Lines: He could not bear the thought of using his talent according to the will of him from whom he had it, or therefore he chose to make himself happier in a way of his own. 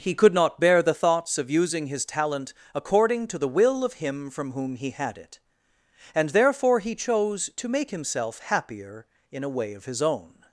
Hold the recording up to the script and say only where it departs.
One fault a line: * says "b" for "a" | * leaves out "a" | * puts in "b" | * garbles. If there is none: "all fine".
* says "thoughts" for "thought"
* says "and" for "or"